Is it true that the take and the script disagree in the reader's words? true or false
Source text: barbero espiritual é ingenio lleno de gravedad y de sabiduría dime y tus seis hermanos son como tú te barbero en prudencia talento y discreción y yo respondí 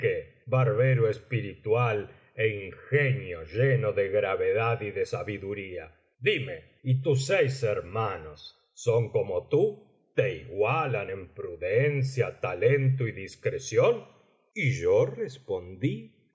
true